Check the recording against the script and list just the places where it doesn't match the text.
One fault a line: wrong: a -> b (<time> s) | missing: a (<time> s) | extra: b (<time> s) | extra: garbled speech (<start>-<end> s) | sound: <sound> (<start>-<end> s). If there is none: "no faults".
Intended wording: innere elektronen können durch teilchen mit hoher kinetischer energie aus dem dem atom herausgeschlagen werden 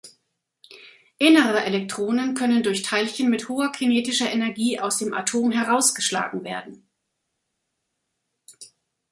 missing: dem (5.1 s)